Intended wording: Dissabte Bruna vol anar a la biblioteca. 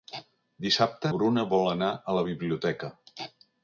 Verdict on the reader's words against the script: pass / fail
pass